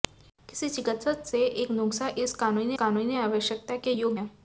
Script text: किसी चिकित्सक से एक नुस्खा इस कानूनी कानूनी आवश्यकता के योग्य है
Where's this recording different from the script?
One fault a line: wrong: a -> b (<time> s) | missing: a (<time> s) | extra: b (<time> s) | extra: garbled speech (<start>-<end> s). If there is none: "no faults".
no faults